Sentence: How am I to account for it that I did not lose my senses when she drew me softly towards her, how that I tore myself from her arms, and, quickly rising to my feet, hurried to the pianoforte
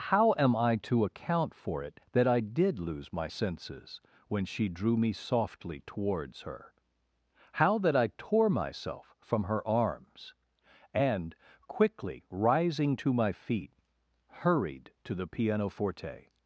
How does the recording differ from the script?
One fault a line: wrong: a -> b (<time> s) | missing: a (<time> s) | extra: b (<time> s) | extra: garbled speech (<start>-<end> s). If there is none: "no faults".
missing: not (2.8 s)